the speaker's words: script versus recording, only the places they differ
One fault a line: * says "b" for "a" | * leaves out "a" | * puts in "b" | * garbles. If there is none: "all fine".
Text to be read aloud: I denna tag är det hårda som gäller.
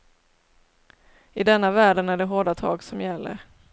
* says "världen" for "tag"
* puts in "tag"